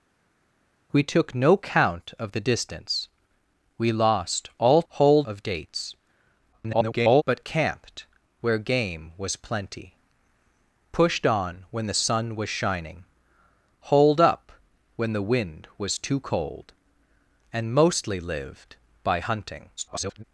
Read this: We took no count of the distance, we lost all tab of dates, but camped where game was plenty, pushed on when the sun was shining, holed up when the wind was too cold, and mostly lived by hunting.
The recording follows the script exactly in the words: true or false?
false